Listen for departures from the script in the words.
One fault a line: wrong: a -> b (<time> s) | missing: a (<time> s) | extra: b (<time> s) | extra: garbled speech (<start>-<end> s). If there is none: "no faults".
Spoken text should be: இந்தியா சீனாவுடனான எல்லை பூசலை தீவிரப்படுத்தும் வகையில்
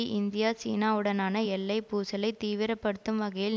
no faults